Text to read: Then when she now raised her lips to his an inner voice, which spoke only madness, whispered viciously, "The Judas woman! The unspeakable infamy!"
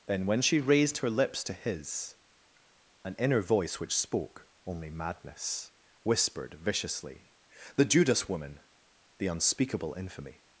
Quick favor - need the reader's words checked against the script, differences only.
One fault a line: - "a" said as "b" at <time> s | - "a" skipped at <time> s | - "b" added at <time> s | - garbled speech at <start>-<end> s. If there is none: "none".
- "now" skipped at 0.6 s